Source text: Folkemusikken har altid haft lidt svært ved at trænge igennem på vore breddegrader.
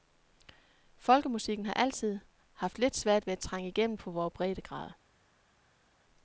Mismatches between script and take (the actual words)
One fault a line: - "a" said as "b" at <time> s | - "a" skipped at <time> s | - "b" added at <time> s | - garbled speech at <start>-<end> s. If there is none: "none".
none